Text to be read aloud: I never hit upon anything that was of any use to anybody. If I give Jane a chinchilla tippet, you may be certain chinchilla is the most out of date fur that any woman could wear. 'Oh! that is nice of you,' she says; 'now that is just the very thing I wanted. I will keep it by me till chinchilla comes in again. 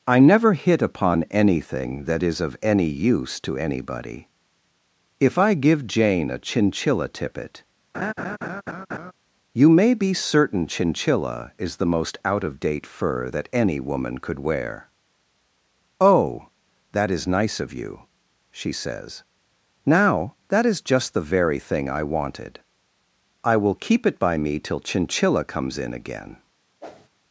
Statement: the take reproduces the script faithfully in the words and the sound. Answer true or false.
false